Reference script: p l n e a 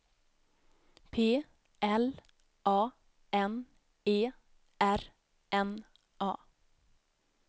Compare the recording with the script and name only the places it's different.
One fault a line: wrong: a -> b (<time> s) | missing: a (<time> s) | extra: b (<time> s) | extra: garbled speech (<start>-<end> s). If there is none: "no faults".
extra: a (2.6 s)
extra: r n (4.8 s)